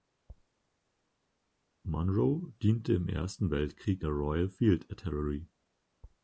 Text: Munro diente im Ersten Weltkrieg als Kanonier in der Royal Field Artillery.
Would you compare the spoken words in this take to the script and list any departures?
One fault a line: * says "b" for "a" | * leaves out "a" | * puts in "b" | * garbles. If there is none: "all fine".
* leaves out "als Kanonier in"